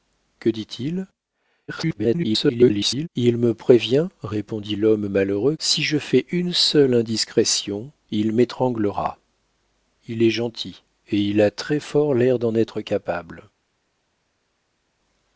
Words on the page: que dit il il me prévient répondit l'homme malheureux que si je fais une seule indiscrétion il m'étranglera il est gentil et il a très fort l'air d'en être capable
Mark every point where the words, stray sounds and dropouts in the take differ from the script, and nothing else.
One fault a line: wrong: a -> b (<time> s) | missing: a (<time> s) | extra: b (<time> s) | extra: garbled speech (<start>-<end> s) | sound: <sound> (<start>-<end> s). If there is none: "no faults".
extra: garbled speech (1.7-3.1 s)
missing: que (5.6 s)